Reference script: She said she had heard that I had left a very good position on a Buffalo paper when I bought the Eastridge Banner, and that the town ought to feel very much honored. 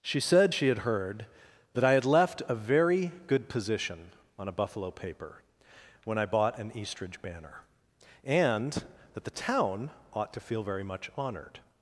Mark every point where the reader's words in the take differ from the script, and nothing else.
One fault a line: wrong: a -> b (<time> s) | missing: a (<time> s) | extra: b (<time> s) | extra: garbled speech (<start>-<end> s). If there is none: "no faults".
wrong: the -> an (6.6 s)